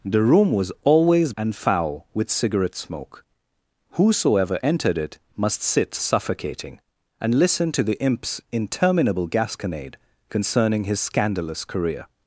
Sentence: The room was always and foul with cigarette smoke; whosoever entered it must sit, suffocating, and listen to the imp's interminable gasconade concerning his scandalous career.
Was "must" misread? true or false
false